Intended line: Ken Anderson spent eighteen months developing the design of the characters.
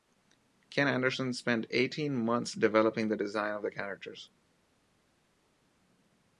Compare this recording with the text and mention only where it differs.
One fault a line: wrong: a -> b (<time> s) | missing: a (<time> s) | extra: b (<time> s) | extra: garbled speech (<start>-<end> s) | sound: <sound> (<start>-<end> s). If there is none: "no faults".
no faults